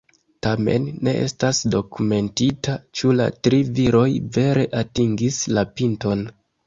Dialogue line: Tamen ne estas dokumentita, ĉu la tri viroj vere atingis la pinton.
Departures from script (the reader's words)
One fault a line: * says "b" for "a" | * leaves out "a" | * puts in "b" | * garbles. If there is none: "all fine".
all fine